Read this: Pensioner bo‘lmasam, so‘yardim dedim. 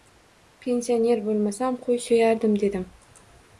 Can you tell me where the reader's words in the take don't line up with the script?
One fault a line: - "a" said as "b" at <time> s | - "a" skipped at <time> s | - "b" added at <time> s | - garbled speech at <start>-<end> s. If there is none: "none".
- "qo‘y" added at 1.9 s